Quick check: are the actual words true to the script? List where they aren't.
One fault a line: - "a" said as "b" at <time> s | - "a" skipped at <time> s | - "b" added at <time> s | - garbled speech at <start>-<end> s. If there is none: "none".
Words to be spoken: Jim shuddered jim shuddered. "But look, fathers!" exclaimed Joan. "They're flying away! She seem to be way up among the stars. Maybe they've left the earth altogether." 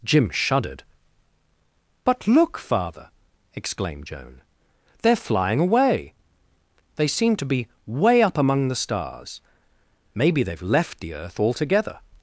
- "jim shuddered" skipped at 0.8 s
- "fathers" said as "father" at 2.6 s
- "She" said as "They" at 6.9 s